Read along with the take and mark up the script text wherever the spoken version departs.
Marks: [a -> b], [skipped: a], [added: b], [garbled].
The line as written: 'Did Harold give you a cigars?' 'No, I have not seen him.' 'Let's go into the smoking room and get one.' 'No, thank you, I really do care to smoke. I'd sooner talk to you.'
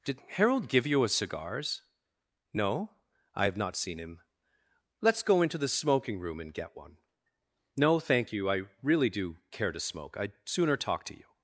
'Did Harold give you a cigars?' 'No, I have not seen him.' 'Let's go into the smoking room and get one.' 'No, thank you, I really do care to smoke. I'd sooner talk to you.'